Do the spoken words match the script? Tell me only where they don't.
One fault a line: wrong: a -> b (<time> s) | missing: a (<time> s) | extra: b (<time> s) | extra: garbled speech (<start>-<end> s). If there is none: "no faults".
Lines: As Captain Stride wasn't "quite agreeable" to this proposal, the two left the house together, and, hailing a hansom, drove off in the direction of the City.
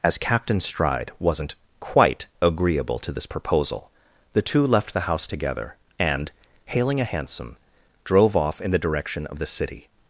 no faults